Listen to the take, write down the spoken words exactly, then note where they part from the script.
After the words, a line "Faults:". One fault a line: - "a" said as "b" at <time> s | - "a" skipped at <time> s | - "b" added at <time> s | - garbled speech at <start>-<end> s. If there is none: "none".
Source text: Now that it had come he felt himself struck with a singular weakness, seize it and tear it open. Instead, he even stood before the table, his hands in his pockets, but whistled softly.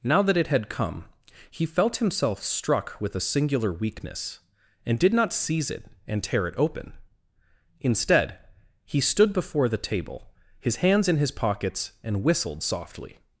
Now that it had come he felt himself struck with a singular weakness, and did not seize it and tear it open. Instead, he stood before the table, his hands in his pockets, and whistled softly.
Faults:
- "and did not" added at 4.8 s
- "even" skipped at 9.0 s
- "but" said as "and" at 12.0 s